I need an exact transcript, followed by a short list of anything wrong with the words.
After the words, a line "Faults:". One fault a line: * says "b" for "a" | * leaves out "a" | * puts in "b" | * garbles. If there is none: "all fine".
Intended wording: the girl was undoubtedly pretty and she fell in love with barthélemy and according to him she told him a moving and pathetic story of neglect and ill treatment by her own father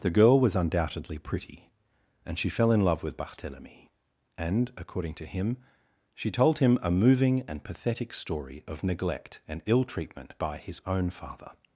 the girl was undoubtedly pretty and she fell in love with barthélemy and according to him she told him a moving and pathetic story of neglect and ill treatment by his own father
Faults:
* says "his" for "her"